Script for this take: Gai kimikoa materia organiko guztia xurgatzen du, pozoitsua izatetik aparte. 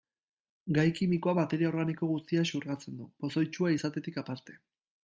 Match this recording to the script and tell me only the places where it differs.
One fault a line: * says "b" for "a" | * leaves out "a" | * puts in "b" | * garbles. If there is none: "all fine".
all fine